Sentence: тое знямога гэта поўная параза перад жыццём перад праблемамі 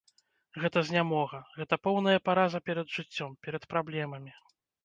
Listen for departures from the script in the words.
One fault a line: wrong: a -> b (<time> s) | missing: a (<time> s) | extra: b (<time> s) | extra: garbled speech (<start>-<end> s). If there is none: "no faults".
wrong: тое -> гэта (0.6 s)